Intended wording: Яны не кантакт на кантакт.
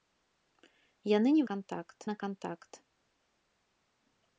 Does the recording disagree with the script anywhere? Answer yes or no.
no